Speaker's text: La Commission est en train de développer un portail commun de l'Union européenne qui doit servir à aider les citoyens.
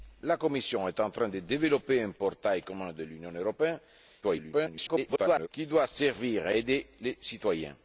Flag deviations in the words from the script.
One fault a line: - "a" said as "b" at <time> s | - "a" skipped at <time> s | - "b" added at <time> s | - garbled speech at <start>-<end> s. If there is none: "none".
- garbled speech at 4.2-5.5 s